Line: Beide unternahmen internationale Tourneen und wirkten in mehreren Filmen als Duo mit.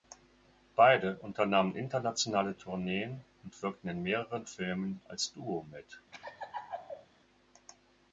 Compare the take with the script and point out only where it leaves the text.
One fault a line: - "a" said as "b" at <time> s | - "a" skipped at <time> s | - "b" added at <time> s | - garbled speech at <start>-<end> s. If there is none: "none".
none